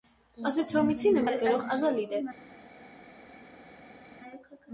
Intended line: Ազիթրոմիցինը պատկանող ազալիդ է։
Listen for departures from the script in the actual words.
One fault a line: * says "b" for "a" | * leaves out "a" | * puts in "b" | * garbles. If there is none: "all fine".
all fine